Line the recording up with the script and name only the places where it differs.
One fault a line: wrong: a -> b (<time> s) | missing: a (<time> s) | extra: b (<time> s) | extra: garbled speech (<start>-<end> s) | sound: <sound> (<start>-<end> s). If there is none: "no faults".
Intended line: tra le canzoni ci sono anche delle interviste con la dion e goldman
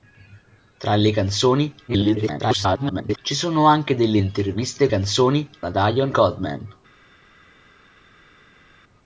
extra: garbled speech (1.9-3.2 s)
wrong: con -> canzoni (4.9 s)
missing: e (6.1 s)